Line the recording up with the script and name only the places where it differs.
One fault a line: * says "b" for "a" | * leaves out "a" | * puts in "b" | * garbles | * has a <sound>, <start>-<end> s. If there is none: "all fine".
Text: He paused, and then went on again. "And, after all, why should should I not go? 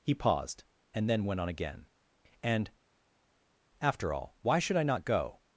* leaves out "should"